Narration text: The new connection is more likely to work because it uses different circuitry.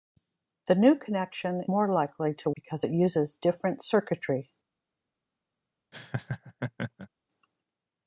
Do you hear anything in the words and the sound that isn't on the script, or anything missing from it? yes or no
yes